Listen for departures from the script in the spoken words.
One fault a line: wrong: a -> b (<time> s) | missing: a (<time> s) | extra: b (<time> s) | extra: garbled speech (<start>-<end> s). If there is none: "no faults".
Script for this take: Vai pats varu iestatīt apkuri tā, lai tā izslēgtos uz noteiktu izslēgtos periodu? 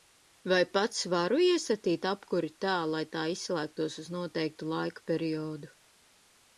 wrong: izslēgtos -> laika (4.8 s)